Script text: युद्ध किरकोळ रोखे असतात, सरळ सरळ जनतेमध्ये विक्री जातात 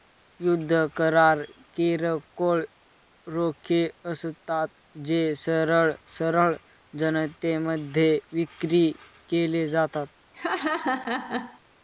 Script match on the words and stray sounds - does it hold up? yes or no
no